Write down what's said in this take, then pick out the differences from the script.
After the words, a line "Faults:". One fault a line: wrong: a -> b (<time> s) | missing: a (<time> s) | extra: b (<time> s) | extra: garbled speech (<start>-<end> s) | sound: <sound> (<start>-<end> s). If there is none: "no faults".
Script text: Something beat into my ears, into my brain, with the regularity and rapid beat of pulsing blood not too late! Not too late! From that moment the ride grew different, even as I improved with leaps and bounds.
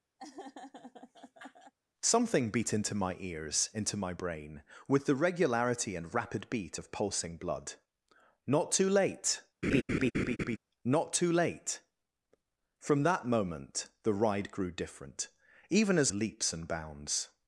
Something beat into my ears, into my brain, with the regularity and rapid beat of pulsing blood not too late! Not too late! From that moment the ride grew different, even as leaps and bounds.
Faults:
sound: laugh (0.2-1.7 s)
sound: laugh (9.6-10.6 s)
missing: I improved with (16.1 s)